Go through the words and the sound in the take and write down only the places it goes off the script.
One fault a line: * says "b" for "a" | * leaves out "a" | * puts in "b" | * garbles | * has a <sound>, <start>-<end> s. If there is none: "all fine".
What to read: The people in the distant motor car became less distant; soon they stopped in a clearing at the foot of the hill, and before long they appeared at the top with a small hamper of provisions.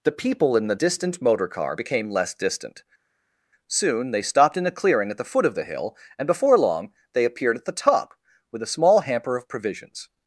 all fine